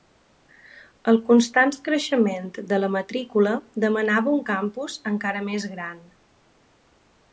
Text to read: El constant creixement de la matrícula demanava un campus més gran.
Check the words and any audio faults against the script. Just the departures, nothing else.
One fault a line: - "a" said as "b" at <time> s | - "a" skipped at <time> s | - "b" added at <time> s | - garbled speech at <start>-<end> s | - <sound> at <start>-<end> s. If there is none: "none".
- "encara" added at 5.1 s